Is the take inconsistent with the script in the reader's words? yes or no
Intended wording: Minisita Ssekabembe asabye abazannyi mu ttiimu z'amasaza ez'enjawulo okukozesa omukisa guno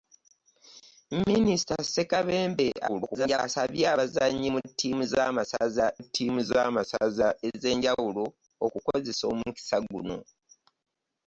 yes